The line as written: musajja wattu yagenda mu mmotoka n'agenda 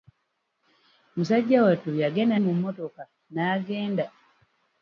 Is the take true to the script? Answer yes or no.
yes